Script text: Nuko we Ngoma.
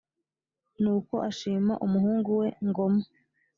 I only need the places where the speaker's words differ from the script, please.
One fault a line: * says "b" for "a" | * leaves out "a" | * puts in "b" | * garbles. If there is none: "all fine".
* puts in "ashima umuhungu"